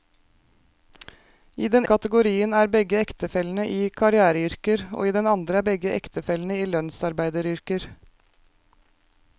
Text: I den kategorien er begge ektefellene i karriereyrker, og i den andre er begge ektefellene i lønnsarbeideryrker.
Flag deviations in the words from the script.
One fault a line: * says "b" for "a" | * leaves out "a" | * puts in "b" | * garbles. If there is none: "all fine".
all fine